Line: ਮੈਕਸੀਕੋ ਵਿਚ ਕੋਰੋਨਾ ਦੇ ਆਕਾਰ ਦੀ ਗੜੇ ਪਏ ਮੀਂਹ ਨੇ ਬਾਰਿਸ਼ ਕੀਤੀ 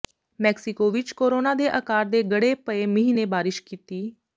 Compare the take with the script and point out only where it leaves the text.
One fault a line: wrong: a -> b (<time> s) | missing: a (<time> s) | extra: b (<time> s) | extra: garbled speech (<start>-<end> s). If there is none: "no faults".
wrong: ਦੀ -> ਦੇ (2.0 s)